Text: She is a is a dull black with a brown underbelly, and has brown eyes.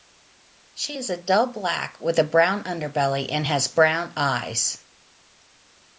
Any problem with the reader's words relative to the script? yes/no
yes